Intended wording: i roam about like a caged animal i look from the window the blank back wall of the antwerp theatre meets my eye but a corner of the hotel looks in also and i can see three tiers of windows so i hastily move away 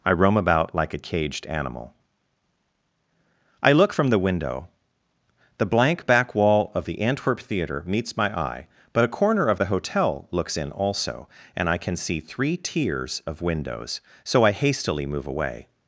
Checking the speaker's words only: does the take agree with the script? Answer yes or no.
yes